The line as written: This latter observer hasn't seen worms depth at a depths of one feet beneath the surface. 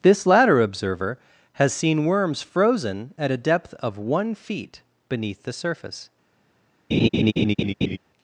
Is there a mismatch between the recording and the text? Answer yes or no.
yes